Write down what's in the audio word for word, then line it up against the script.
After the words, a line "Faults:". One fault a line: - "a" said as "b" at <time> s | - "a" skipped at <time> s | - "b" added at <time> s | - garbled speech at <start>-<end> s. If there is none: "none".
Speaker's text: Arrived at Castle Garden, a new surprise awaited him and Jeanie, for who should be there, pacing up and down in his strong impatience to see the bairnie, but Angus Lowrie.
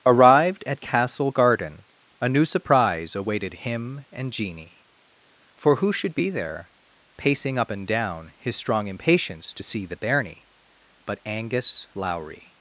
Arrived at Castle Garden, a new surprise awaited him and Jeanie, for who should be there, pacing up and down his strong impatience to see the bairnie, but Angus Lowrie.
Faults:
- "in" skipped at 8.3 s